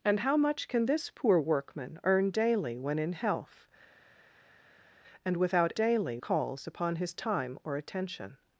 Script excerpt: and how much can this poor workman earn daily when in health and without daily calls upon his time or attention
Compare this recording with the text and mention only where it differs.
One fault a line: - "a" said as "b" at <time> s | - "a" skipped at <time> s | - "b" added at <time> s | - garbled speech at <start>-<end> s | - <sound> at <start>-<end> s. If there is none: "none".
none